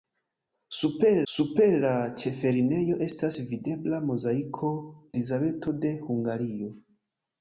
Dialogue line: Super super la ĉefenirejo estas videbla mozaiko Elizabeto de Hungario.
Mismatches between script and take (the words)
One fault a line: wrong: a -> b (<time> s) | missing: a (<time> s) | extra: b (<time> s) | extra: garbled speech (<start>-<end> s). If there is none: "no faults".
no faults